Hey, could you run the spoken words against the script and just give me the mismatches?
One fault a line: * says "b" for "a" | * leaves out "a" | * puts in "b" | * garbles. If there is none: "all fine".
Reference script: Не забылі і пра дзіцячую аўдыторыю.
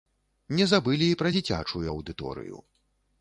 all fine